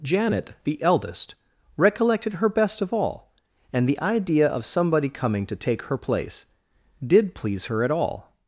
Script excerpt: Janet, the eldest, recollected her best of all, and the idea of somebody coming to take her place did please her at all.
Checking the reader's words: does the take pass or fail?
pass